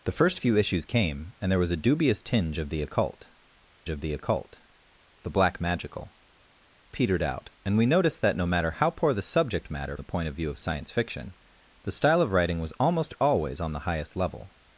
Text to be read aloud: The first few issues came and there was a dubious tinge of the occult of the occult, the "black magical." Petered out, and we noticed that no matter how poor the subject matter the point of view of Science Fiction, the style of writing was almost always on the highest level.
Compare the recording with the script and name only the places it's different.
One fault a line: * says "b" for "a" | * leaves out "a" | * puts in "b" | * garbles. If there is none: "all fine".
all fine